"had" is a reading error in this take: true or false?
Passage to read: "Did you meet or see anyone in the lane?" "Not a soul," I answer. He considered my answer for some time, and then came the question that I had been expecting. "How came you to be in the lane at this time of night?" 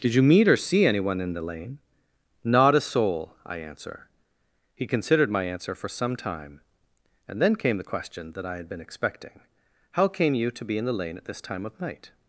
false